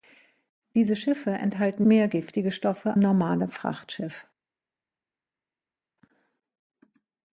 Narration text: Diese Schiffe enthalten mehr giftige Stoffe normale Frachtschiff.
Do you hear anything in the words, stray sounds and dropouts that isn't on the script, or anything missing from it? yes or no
no